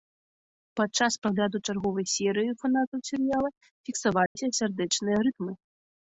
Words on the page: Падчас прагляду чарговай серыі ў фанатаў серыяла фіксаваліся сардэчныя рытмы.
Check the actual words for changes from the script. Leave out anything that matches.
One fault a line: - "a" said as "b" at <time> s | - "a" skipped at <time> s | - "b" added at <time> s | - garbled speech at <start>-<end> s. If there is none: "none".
none